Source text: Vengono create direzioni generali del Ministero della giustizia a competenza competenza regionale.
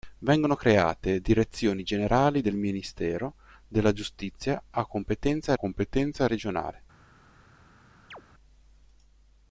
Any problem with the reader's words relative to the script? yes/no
no